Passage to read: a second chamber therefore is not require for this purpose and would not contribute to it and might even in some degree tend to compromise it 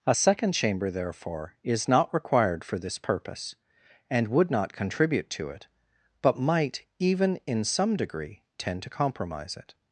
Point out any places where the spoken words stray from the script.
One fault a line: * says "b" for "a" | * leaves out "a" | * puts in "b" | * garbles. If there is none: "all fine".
* says "required" for "require"
* says "but" for "and"